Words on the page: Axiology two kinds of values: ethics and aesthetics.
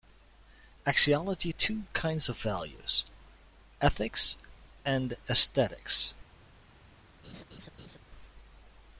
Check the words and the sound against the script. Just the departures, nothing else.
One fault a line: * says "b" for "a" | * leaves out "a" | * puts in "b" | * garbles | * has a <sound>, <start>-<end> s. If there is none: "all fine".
* has a laugh, 7.2-8.0 s